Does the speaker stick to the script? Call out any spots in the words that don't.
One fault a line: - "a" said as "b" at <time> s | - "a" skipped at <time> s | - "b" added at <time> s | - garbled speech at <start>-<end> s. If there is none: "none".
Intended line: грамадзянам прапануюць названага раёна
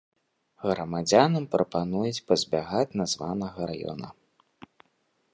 - "пазбягаць" added at 2.3 s